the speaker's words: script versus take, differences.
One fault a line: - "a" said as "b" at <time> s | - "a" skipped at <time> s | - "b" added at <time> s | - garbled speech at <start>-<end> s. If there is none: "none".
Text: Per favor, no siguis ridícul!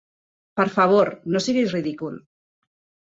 none